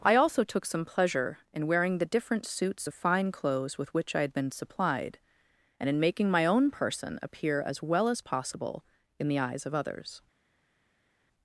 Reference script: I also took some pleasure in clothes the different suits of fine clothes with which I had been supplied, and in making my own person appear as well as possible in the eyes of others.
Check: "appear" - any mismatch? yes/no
no